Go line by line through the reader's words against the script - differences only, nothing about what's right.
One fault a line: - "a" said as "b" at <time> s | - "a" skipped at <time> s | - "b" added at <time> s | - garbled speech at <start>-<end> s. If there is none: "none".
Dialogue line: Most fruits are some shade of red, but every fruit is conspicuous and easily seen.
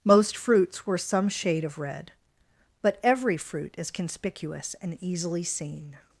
- "are" said as "were" at 0.9 s